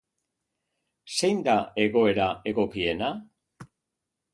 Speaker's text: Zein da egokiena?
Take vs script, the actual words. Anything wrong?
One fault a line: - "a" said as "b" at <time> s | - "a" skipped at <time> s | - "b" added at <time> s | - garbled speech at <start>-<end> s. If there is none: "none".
- "egoera" added at 1.9 s